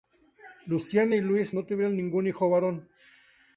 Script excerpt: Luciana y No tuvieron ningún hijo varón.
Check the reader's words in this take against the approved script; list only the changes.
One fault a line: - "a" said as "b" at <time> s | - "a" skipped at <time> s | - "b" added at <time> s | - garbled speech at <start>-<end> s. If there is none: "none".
- "Luis" added at 1.2 s